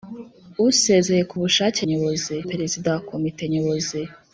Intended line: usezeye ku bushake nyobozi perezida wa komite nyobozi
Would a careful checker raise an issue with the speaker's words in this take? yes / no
no